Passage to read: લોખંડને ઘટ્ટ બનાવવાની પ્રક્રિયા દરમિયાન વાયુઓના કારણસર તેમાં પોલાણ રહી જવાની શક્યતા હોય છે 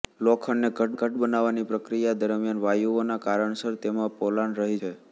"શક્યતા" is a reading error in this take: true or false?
true